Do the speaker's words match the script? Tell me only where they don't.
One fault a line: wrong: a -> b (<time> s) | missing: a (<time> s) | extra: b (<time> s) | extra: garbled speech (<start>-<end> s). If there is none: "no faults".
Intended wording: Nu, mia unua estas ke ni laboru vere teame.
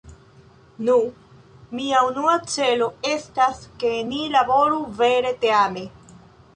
extra: celo (2.5 s)